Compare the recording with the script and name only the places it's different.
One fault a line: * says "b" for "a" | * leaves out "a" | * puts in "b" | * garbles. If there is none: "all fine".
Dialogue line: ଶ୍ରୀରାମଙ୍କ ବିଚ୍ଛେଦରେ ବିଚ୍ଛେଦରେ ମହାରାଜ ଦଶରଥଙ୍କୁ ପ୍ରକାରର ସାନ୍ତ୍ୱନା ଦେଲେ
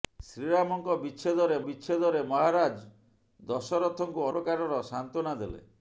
all fine